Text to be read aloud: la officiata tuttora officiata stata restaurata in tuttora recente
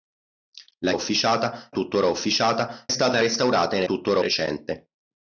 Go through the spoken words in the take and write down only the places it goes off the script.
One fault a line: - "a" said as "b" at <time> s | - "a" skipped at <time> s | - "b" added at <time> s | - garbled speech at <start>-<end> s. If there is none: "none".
none